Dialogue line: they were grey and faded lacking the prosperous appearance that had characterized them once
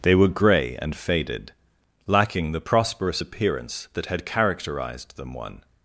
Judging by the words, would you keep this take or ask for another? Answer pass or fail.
fail